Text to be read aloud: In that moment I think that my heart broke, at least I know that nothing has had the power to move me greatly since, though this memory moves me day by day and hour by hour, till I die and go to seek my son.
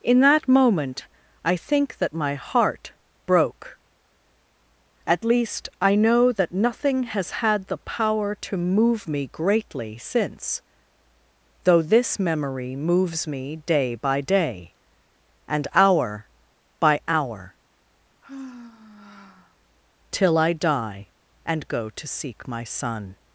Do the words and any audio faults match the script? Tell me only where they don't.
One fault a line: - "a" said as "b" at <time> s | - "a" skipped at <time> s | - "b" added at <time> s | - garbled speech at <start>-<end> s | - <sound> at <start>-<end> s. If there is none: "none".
- sigh at 18.2-19.6 s